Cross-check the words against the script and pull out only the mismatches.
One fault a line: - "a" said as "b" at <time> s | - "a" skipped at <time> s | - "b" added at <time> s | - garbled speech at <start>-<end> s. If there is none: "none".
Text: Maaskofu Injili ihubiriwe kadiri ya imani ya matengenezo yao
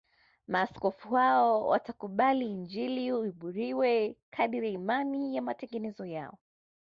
- "hao watakubali" added at 1.1 s